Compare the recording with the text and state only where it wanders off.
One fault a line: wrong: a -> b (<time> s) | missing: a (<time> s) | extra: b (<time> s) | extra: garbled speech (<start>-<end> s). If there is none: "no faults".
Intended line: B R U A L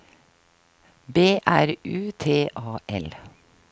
extra: T (2.2 s)